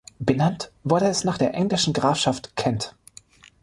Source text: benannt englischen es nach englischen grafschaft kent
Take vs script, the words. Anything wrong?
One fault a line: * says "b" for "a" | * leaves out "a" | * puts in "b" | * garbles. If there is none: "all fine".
* says "wurde" for "englischen"
* puts in "der"